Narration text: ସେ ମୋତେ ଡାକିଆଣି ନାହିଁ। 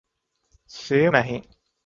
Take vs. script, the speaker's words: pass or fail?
fail